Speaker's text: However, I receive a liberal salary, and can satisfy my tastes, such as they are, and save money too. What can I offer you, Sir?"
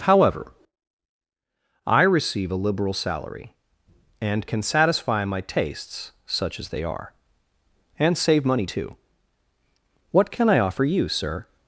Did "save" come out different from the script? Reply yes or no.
no